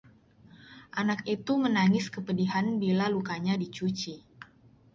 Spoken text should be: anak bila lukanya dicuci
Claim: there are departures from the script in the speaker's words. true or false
true